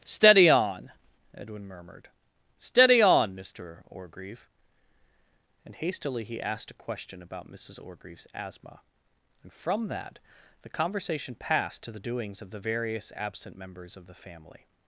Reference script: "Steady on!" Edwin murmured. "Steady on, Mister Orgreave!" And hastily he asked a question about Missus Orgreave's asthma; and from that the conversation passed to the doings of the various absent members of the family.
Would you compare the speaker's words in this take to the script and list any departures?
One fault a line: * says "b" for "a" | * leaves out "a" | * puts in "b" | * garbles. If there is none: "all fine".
all fine